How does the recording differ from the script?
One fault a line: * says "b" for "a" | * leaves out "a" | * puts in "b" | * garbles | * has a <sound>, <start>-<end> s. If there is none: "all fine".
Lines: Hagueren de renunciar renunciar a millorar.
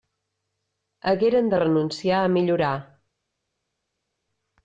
* leaves out "renunciar"